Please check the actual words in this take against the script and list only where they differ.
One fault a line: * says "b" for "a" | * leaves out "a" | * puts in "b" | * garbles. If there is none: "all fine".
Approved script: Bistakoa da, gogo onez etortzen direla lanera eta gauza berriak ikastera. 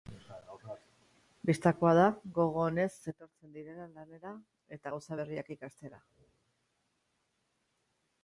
all fine